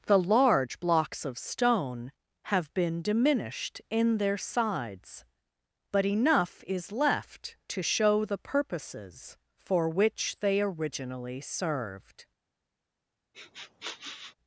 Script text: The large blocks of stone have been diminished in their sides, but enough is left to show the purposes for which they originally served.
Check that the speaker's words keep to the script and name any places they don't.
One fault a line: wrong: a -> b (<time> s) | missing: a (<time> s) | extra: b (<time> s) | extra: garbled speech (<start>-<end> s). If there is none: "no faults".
no faults